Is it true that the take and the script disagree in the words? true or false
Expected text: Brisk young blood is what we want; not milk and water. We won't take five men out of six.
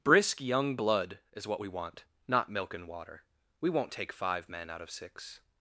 false